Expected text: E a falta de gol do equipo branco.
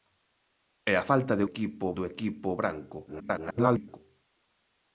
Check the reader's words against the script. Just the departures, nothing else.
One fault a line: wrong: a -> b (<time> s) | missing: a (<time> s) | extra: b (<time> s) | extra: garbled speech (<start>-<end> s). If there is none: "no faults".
wrong: gol -> equipo (1.5 s)
extra: garbled speech (3.1-4.0 s)